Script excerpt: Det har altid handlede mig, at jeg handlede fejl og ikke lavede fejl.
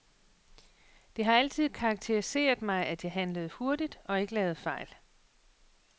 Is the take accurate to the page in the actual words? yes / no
no